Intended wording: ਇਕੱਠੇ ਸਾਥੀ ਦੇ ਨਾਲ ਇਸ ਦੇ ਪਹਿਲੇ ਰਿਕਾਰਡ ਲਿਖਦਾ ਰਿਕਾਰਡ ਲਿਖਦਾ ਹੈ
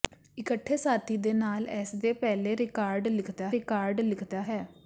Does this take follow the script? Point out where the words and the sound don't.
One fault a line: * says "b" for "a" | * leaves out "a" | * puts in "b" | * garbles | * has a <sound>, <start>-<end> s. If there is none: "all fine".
all fine